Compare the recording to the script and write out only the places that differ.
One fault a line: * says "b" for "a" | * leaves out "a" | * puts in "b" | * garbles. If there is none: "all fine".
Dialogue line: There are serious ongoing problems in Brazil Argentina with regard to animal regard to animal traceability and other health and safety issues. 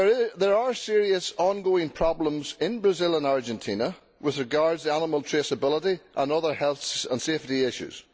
* puts in "and"
* leaves out "regard to animal"